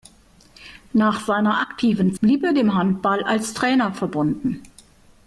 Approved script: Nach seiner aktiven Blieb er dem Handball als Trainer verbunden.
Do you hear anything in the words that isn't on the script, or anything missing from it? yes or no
no